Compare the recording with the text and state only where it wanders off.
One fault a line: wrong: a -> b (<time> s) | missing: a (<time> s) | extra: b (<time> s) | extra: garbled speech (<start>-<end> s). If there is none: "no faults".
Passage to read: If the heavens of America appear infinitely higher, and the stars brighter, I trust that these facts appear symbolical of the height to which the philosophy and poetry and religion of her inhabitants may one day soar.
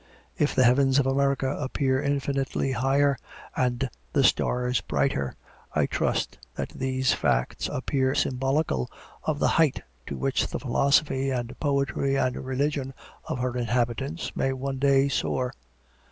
no faults